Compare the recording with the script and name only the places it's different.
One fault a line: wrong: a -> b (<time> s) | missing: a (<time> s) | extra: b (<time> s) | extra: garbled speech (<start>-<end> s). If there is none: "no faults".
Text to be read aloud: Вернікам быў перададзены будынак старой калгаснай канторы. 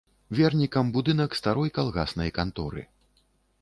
missing: быў перададзены (0.9 s)